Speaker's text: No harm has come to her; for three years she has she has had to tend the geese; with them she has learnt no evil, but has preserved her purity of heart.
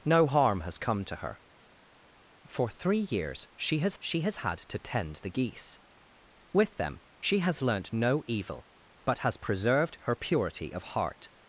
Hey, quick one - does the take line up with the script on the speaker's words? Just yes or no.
yes